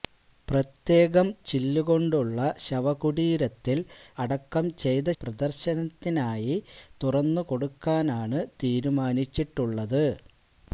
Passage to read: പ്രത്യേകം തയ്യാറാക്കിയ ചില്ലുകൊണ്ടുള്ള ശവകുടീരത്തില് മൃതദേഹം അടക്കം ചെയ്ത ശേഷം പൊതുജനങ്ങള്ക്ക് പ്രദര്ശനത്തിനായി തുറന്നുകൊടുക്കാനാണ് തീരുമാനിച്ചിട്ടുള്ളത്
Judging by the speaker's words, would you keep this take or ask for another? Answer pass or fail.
fail